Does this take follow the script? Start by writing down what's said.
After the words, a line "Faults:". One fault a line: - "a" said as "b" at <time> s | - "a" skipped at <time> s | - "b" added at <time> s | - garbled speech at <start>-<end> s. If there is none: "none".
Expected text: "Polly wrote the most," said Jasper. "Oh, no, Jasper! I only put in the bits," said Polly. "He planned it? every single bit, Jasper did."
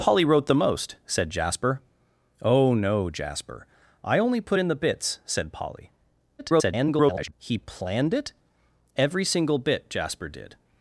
"Polly wrote the most," said Jasper. "Oh, no, Jasper! I only put in the bits," said Polly. [garbled] "He planned it? every single bit, Jasper did."
Faults:
- garbled speech at 6.4-7.3 s